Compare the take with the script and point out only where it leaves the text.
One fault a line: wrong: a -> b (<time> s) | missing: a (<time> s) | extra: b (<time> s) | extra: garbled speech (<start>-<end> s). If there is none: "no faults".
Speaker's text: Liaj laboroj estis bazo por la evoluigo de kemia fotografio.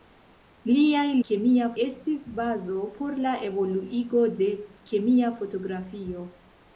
wrong: laboroj -> kemia (1.3 s)